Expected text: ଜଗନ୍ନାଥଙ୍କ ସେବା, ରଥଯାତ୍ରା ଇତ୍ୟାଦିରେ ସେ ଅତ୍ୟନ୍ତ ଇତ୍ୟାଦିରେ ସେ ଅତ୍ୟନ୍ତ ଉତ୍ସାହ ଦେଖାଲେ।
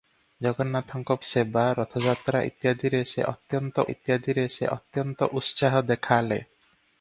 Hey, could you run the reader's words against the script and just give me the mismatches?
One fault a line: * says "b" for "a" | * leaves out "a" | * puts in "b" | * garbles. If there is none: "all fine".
all fine